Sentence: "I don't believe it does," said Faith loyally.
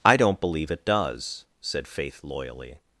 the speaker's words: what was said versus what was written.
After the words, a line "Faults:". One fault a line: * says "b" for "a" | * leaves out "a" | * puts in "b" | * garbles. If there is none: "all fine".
"I don't believe it does," said Faith loyally.
Faults:
all fine